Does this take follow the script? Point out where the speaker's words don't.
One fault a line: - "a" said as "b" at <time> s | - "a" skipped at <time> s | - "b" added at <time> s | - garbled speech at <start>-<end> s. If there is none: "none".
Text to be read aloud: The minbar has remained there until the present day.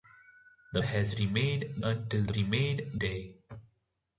- "minbar" skipped at 0.8 s
- "there" skipped at 1.8 s
- "present" said as "remained" at 2.4 s